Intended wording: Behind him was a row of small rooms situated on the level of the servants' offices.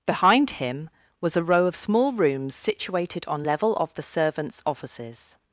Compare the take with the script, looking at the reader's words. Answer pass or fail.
fail